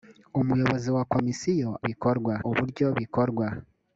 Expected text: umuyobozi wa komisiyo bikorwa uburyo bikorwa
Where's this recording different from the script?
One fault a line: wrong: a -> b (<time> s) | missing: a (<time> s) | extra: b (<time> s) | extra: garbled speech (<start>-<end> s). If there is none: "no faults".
no faults